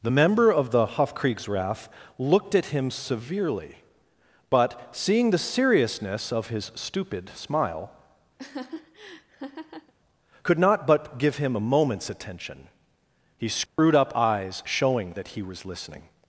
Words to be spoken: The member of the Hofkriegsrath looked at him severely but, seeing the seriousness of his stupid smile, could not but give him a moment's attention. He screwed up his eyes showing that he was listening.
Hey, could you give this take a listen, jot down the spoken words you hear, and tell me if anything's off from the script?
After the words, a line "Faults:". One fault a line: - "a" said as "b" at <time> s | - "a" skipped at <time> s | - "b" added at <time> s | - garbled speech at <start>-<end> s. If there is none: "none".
The member of the Hofkriegsrath looked at him severely but, seeing the seriousness of his stupid smile, could not but give him a moment's attention. He screwed up eyes showing that he was listening.
Faults:
- "his" skipped at 14.2 s